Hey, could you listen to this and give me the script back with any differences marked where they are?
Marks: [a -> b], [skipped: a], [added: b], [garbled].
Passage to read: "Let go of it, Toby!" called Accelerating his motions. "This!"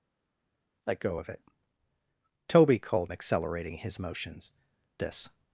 "Let go of it, Toby!" called Accelerating his motions. "This!"